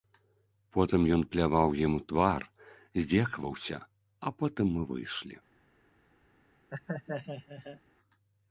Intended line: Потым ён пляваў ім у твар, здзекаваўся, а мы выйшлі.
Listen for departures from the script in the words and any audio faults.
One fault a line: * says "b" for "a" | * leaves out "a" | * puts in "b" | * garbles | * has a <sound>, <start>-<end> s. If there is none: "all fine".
* puts in "потым"
* has a laugh, 6.7-7.8 s